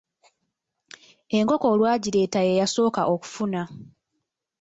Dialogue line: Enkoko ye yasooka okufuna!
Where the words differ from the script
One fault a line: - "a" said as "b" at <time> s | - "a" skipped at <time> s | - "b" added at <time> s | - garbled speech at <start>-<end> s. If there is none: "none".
- "olwagireeta" added at 1.7 s